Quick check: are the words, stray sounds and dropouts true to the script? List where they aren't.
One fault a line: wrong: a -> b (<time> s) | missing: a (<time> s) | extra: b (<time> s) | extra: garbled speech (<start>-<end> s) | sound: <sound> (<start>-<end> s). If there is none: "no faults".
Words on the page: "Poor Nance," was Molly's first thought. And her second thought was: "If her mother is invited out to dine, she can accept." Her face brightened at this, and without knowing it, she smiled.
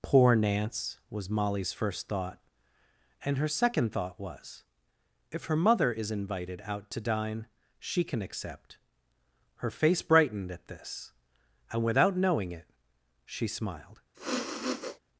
sound: sniff (14.1-15.0 s)